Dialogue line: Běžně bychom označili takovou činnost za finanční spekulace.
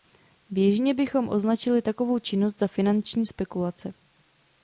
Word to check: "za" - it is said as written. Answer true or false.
true